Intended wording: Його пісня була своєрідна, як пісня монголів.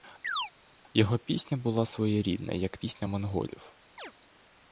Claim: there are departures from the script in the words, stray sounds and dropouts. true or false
true